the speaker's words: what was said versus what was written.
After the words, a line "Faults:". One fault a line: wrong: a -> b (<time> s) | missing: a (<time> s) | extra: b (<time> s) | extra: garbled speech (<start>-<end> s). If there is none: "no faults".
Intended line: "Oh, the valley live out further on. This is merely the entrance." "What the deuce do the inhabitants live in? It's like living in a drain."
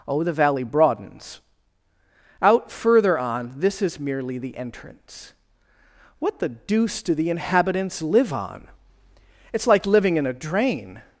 "Oh, the valley broadens out further on. This is merely the entrance." "What the deuce do the inhabitants live on? It's like living in a drain."
Faults:
wrong: live -> broadens (0.6 s)
wrong: in -> on (8.3 s)